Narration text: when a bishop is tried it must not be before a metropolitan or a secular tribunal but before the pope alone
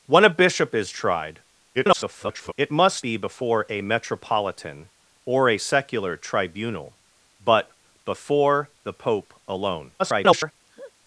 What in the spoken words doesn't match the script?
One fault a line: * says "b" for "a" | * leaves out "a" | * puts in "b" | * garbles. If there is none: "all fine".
* garbles
* leaves out "not"
* garbles